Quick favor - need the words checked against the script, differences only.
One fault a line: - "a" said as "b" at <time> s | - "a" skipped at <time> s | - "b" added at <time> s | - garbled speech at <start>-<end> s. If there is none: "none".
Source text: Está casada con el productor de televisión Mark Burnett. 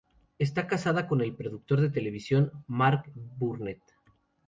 none